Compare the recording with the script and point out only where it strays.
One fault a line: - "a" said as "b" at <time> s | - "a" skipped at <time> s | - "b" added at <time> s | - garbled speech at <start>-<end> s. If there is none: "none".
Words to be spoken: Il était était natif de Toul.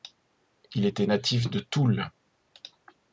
- "était" skipped at 1.1 s